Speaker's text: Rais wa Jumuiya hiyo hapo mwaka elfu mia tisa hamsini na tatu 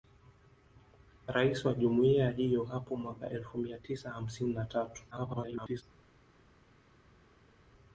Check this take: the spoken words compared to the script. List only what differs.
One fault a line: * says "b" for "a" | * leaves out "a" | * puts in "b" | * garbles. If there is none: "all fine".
* garbles